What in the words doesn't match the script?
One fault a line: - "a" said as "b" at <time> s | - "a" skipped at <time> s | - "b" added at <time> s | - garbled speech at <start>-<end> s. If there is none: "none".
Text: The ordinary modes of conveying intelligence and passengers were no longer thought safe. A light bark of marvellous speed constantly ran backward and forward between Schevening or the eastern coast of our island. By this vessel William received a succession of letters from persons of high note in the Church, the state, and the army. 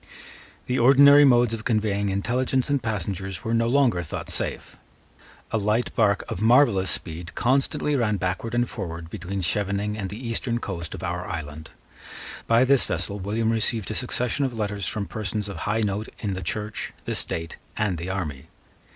- "or" said as "and" at 9.9 s